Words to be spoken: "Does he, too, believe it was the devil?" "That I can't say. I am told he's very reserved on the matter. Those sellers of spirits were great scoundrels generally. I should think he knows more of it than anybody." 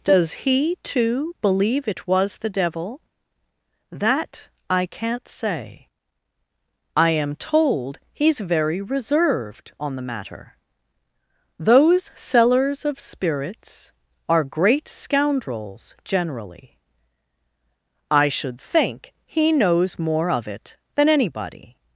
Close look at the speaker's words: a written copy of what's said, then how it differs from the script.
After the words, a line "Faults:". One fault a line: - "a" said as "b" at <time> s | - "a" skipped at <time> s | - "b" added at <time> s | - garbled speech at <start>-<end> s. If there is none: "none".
"Does he, too, believe it was the devil?" "That I can't say. I am told he's very reserved on the matter. Those sellers of spirits are great scoundrels generally. I should think he knows more of it than anybody."
Faults:
- "were" said as "are" at 14.3 s